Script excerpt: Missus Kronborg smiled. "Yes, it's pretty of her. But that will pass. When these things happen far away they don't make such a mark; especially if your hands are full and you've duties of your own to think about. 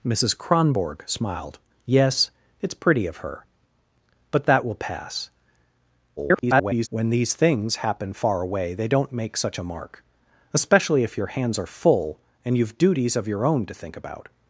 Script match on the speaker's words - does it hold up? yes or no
no